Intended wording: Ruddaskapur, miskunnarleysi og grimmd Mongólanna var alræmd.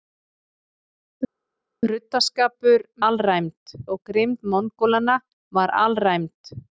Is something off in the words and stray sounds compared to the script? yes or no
yes